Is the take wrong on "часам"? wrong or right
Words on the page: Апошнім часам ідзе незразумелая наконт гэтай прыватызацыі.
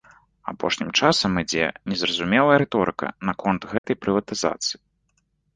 right